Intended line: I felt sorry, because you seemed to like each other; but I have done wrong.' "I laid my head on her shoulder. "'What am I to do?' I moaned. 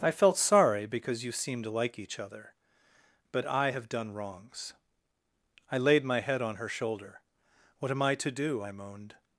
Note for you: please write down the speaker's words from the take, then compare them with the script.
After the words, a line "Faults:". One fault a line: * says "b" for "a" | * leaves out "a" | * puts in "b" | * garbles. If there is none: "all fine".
I felt sorry, because you seemed to like each other; but I have done wrongs.' "I laid my head on her shoulder. "'What am I to do?' I moaned.
Faults:
* says "wrongs" for "wrong"